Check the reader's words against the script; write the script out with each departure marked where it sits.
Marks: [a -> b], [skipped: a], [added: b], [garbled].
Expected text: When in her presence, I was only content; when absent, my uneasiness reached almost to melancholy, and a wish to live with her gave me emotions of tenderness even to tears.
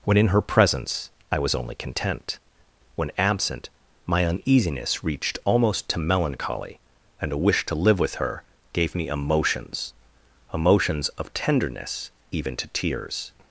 When in her presence, I was only content; when absent, my uneasiness reached almost to melancholy, and a wish to live with her gave me emotions [added: emotions] of tenderness even to tears.